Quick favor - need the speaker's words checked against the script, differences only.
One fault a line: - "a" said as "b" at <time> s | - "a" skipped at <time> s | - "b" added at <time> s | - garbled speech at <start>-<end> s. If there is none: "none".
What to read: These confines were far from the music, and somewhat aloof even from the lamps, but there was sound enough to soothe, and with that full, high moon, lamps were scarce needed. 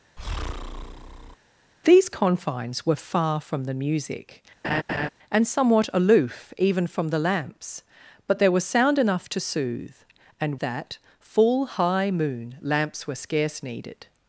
- "with" skipped at 10.6 s